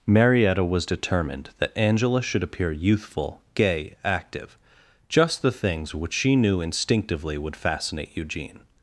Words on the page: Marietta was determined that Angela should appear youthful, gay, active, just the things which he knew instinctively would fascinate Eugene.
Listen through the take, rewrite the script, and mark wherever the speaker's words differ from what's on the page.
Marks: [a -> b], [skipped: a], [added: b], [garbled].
Marietta was determined that Angela should appear youthful, gay, active, just the things which [he -> she] knew instinctively would fascinate Eugene.